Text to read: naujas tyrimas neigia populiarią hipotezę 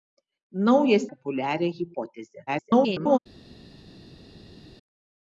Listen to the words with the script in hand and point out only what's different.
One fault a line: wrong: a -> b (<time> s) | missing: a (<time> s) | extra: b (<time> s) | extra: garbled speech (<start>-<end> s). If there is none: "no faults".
missing: tyrimas neigia (1.0 s)
extra: garbled speech (2.5-3.2 s)